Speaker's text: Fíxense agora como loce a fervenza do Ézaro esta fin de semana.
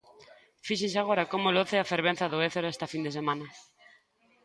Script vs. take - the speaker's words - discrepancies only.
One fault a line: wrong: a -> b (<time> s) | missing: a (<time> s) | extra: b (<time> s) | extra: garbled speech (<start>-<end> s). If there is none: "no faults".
no faults